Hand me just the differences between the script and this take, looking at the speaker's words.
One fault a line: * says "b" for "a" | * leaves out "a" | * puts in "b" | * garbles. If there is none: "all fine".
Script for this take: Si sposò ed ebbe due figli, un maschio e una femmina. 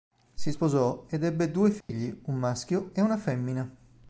all fine